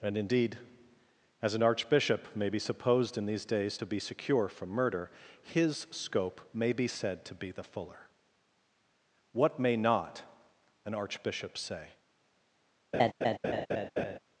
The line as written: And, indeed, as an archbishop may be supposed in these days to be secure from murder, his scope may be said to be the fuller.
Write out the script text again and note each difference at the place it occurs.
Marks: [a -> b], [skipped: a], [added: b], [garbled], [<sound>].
And, indeed, as an archbishop may be supposed in these days to be secure from murder, his scope may be said to be the fuller. [added: What may not an archbishop say] [laugh]